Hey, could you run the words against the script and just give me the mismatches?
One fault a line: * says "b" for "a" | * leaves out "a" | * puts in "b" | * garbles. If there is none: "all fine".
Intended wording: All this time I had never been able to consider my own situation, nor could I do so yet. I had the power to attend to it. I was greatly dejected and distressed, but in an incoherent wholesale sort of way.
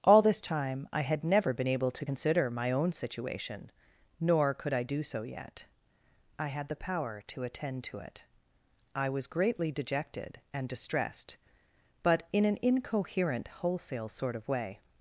all fine